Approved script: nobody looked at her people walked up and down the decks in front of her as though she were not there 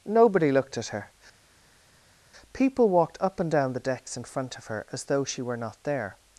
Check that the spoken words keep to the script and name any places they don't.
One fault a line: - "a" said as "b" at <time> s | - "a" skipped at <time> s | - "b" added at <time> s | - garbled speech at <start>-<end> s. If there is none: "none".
none